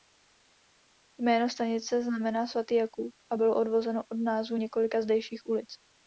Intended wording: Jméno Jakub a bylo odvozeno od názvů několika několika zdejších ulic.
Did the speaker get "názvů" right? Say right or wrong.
right